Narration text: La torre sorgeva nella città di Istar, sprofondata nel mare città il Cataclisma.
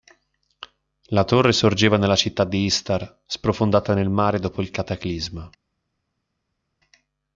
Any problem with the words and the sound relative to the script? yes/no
yes